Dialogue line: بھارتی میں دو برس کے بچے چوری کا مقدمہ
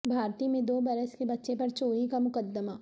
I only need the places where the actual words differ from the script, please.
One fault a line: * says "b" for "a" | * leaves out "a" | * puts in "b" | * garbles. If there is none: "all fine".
* puts in "پر"